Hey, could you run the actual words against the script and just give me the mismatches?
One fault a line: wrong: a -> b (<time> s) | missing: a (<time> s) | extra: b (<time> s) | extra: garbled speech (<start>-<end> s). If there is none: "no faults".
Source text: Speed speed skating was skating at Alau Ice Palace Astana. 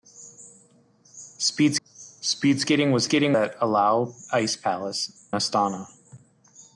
no faults